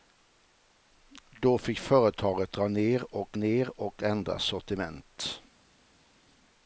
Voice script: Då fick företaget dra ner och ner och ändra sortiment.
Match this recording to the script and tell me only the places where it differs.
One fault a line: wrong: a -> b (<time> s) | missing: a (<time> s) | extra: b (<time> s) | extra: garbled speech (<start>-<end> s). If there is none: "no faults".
no faults